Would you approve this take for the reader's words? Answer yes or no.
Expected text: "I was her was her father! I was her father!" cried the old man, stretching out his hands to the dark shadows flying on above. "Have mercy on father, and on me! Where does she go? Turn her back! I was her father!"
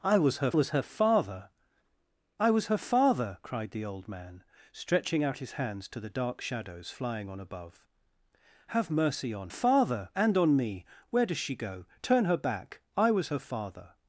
yes